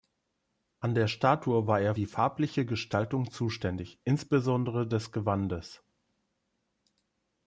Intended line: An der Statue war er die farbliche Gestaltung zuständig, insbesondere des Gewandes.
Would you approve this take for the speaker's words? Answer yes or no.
yes